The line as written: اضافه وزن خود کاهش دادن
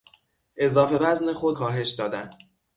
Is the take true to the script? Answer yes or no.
yes